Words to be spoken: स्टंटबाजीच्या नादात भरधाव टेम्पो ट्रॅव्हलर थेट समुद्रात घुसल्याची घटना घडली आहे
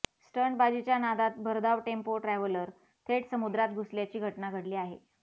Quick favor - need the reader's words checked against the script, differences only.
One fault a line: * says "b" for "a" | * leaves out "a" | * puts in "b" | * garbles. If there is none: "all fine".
all fine